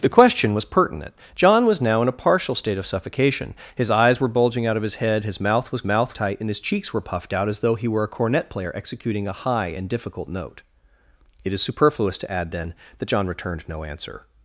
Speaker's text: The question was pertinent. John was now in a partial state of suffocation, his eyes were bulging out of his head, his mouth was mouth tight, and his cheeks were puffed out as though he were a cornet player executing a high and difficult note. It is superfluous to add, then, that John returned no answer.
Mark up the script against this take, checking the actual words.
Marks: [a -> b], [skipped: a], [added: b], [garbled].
The question was pertinent. John was now in a partial state of suffocation, his eyes were bulging out of his head, his mouth was mouth tight, and his cheeks were puffed out as though he were a cornet player executing a high and difficult note. It is superfluous to add, then, that John returned no answer.